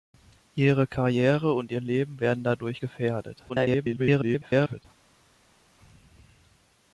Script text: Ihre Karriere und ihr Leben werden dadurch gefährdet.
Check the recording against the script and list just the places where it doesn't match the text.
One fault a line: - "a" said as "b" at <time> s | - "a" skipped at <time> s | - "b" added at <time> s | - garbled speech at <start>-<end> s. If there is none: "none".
- garbled speech at 3.5-4.9 s